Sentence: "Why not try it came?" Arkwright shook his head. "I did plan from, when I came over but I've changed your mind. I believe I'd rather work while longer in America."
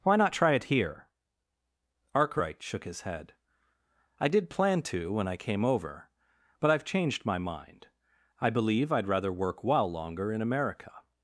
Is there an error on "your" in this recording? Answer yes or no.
yes